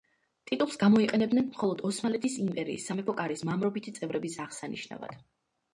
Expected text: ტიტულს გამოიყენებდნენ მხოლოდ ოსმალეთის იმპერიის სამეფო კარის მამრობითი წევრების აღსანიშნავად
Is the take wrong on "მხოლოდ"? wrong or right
right